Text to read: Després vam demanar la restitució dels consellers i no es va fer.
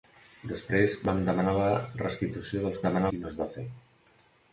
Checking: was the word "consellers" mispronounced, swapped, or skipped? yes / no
yes